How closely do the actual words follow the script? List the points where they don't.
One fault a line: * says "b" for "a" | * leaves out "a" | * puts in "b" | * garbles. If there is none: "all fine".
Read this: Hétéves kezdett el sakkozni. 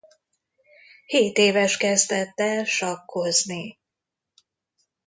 all fine